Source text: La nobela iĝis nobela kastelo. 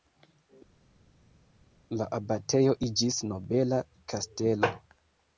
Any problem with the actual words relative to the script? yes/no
yes